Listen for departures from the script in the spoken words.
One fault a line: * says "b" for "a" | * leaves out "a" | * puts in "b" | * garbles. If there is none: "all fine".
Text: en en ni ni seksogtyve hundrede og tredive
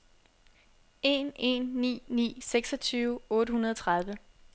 * puts in "otte"